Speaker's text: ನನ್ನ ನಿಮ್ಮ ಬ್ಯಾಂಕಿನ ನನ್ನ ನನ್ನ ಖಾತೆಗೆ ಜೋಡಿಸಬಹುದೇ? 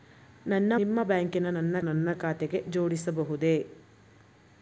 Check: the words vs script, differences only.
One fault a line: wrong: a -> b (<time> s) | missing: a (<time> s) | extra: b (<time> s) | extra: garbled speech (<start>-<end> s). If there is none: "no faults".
no faults